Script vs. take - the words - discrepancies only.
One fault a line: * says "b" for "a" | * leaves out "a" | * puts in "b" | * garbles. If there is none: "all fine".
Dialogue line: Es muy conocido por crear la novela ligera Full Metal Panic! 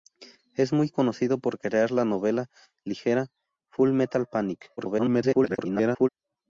* garbles